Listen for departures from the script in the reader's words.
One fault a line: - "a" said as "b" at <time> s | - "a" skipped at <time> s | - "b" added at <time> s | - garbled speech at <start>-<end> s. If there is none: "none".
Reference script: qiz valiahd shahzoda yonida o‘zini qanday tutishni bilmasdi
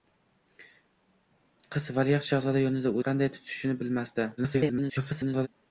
- "o‘zini" skipped at 3.0 s
- garbled speech at 4.4-5.5 s